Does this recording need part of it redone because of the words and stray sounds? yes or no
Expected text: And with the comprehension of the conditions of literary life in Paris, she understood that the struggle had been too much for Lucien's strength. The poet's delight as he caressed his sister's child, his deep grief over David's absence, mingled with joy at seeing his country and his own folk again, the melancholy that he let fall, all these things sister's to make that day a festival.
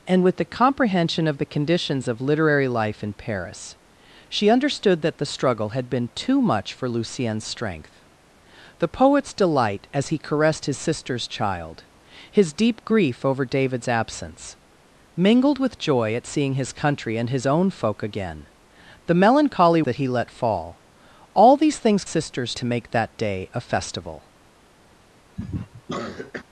yes